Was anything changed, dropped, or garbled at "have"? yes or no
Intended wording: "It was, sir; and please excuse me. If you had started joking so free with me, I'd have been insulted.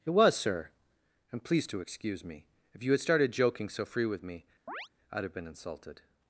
no